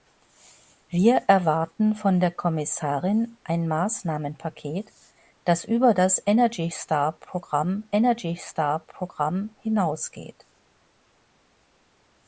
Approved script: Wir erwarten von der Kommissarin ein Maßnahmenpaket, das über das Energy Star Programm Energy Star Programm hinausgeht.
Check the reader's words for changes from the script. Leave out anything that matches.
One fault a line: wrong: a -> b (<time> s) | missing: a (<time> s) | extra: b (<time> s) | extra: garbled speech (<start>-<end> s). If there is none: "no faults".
no faults